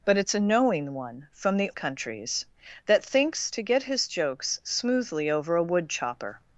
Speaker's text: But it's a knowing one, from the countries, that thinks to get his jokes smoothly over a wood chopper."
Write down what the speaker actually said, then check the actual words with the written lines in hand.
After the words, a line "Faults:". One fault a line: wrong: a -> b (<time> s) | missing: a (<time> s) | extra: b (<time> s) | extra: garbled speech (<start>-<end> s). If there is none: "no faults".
But it's a knowing one, from the countries, that thinks to get his jokes smoothly over a wood chopper."
Faults:
no faults